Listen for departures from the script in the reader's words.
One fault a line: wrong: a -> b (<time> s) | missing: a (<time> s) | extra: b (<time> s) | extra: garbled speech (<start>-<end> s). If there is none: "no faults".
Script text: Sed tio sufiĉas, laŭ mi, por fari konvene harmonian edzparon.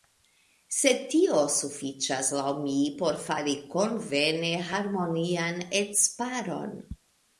no faults